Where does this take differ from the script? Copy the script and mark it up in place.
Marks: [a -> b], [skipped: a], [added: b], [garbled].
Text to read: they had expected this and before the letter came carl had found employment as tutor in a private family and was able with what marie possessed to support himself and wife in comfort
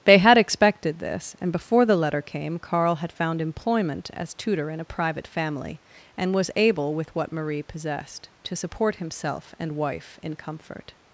they had expected this and before the letter came carl had found employment as tutor in a private family and was able with what marie possessed to support himself and wife in comfort